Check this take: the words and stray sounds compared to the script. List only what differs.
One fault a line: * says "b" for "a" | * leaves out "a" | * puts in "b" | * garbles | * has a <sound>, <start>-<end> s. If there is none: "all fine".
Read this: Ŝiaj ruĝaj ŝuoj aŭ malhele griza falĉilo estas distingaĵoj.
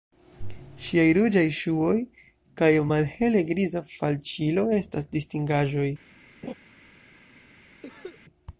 * says "kaj" for "aŭ"
* has a laugh, 6.4-6.5 s
* has a cough, 7.8-8.2 s